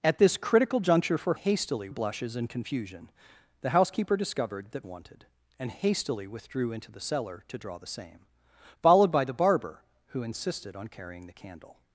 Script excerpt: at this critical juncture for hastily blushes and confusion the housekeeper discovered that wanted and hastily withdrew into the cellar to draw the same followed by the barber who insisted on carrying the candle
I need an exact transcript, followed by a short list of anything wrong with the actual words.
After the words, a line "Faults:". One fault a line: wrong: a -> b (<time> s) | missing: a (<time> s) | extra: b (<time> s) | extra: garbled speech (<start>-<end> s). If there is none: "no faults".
at this critical juncture for hastily blushes and confusion the housekeeper discovered that wanted and hastily withdrew into the cellar to draw the same followed by the barber who insisted on carrying the candle
Faults:
no faults